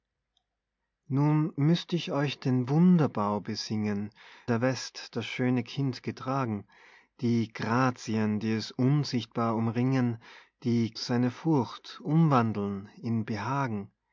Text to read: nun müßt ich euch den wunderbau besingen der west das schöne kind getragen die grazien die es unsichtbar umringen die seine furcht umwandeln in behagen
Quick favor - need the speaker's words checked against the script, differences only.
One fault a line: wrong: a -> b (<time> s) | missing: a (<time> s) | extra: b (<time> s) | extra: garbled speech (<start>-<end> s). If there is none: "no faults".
no faults